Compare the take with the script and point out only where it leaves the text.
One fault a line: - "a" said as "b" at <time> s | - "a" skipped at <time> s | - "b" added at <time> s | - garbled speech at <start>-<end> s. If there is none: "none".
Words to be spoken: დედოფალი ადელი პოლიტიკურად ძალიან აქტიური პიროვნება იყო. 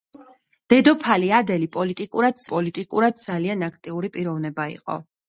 - "პოლიტიკურად" added at 2.5 s